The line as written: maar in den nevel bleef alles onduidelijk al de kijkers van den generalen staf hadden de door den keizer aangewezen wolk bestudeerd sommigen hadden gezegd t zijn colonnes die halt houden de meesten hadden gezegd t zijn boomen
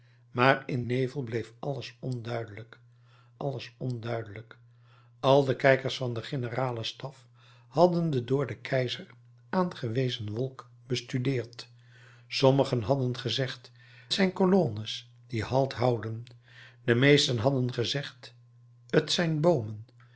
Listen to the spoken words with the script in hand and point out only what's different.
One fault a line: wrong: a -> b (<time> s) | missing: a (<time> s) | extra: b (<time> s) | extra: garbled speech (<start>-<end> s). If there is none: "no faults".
missing: den (0.8 s)
extra: alles onduidelijk (3.4 s)
missing: t (13.7 s)